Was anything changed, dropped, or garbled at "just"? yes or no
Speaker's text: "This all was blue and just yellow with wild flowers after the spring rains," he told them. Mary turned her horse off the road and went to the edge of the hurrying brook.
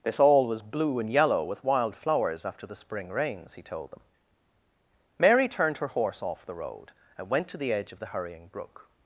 yes